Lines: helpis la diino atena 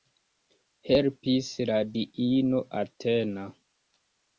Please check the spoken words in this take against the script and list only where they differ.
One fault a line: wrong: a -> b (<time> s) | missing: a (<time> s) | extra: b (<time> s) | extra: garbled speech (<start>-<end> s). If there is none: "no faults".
no faults